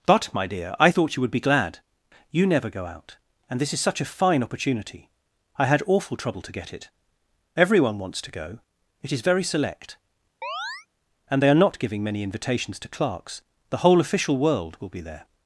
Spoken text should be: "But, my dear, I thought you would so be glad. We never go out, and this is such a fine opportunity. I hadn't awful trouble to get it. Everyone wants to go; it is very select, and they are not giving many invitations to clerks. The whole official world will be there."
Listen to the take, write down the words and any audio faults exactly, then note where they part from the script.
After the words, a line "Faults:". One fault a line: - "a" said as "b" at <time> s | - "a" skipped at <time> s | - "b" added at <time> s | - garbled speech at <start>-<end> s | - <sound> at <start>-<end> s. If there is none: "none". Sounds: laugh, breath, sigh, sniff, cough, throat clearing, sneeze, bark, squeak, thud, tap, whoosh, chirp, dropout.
"But, my dear, I thought you would be glad. You never go out, and this is such a fine opportunity. I had awful trouble to get it. Everyone wants to go; it is very select, and they are not giving many invitations to clerks. The whole official world will be there."
Faults:
- "so" skipped at 1.3 s
- "We" said as "You" at 2.3 s
- "hadn't" said as "had" at 5.6 s
- chirp at 10.4-10.9 s